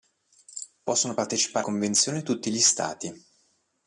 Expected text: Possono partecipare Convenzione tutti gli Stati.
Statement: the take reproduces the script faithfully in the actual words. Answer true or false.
true